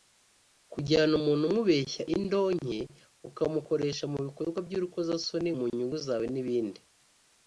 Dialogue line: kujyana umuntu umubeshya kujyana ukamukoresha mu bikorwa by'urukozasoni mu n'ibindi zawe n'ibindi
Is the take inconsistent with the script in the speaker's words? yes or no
yes